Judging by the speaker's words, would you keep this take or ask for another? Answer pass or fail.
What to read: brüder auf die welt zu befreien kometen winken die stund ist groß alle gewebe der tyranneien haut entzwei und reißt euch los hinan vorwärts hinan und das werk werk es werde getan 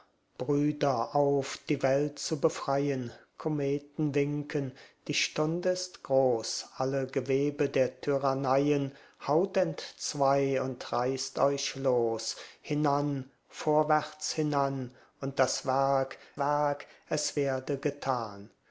pass